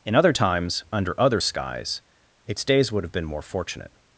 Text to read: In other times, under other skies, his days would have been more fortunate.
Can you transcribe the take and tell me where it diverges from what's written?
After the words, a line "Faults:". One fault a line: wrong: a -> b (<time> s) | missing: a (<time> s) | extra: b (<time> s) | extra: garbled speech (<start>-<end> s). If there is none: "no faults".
In other times, under other skies, its days would have been more fortunate.
Faults:
wrong: his -> its (2.5 s)